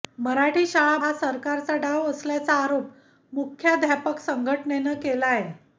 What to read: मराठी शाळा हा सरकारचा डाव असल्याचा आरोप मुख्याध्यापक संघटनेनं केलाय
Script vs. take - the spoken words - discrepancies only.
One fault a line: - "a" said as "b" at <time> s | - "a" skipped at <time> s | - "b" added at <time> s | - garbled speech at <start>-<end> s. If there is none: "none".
none